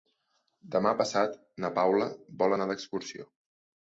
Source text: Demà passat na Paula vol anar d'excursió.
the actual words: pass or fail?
pass